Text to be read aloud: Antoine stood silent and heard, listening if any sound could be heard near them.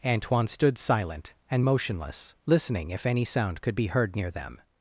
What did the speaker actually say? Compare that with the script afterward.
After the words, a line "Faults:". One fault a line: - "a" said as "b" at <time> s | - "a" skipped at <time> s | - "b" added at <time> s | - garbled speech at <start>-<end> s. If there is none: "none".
Antoine stood silent and motionless, listening if any sound could be heard near them.
Faults:
- "heard" said as "motionless" at 1.6 s